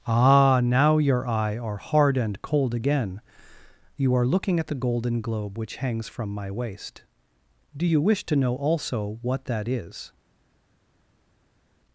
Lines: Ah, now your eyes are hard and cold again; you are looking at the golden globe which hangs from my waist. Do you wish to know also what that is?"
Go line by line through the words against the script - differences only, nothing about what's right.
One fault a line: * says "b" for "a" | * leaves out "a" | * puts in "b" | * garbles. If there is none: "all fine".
* says "eye" for "eyes"